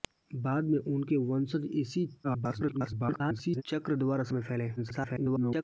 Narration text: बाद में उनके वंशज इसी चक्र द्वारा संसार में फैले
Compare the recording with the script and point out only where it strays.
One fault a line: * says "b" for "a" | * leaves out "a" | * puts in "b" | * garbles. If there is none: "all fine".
* garbles
* leaves out "संसार"
* garbles